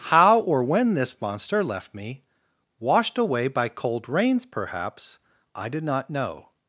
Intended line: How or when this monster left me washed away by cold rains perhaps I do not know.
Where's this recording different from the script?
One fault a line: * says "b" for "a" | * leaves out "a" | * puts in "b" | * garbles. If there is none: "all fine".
* says "did" for "do"